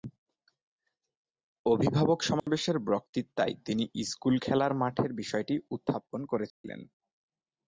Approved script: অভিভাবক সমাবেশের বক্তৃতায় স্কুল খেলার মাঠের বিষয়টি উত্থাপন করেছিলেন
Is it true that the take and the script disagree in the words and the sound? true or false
true